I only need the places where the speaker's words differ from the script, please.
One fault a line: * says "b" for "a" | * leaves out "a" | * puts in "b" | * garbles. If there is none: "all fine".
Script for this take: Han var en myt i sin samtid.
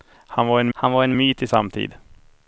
* puts in "han var en"
* leaves out "sin"